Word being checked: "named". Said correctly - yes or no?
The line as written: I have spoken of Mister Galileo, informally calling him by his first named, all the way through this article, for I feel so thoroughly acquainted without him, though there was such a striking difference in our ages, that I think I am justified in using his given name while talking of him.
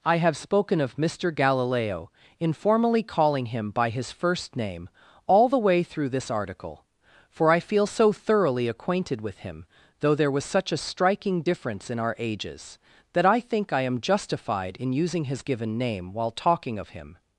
no